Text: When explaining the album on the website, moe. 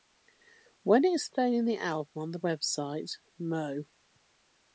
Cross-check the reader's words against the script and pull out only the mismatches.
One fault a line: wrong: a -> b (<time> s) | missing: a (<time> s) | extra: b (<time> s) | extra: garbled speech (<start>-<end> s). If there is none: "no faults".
no faults